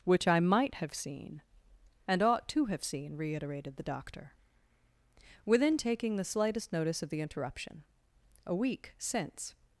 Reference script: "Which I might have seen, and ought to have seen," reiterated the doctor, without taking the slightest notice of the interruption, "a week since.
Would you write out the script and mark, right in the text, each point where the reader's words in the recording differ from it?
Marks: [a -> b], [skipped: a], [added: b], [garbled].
"Which I might have seen, and ought to have seen," reiterated the doctor, [without -> within] taking the slightest notice of the interruption, "a week since.